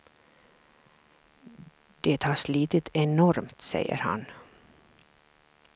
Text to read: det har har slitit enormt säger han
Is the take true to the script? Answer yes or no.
no